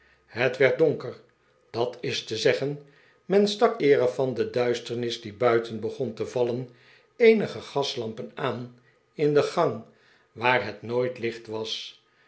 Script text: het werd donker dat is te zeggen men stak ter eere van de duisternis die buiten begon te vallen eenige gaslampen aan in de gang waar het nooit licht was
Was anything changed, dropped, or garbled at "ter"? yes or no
yes